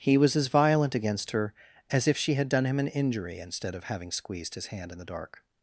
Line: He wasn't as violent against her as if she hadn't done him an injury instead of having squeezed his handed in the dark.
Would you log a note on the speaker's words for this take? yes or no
yes